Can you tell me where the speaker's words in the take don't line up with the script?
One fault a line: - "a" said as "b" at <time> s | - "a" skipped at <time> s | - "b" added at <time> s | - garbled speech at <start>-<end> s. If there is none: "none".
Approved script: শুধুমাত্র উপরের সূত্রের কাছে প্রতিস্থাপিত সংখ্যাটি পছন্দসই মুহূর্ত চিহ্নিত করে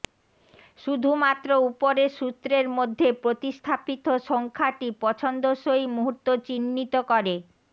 - "কাছে" said as "মধ্যে" at 2.7 s